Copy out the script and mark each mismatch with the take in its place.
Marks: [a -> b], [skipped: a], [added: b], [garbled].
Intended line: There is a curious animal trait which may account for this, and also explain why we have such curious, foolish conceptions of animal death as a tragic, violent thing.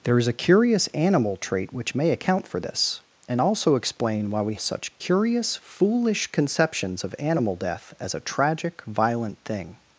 There is a curious animal trait which may account for this, and also explain why we [skipped: have] such curious, foolish conceptions of animal death as a tragic, violent thing.